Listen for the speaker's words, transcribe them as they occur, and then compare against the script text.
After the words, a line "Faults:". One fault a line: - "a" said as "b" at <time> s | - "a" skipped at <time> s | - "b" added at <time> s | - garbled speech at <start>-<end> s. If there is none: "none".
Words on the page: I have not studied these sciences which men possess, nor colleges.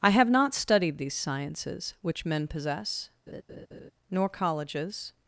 I have not studied these sciences which men possess, nor colleges.
Faults:
none